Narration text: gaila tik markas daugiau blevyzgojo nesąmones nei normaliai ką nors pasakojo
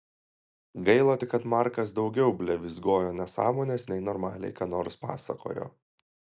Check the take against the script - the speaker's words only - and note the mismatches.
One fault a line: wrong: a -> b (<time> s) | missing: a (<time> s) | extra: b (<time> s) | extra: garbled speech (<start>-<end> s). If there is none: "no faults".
extra: kad (1.3 s)